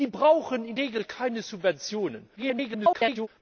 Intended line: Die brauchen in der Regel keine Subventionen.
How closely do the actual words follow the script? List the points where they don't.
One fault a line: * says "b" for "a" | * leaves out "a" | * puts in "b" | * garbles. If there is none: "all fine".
* leaves out "der"
* garbles